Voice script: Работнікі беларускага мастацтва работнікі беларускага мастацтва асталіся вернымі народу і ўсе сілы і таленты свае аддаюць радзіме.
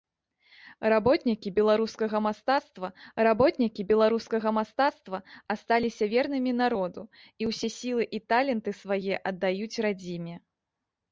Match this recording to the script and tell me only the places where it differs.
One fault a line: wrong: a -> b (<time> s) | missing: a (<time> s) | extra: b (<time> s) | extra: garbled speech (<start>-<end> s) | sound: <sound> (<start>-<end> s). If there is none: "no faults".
no faults